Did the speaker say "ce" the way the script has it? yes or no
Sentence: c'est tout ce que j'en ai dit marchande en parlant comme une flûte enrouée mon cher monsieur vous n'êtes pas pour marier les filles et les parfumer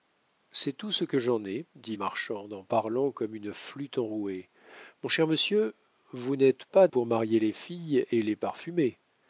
yes